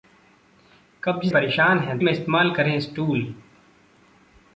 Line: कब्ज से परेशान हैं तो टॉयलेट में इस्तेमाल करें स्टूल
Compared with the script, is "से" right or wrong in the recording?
wrong